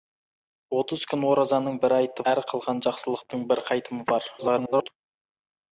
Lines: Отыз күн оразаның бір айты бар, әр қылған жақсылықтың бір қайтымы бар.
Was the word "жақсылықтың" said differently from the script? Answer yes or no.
no